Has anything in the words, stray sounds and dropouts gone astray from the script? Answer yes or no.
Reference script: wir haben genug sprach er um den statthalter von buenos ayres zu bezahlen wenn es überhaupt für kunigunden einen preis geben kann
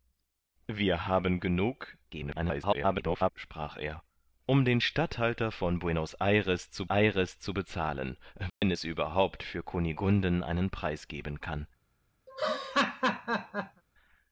yes